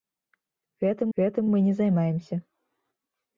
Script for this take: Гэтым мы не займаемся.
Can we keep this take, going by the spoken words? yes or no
no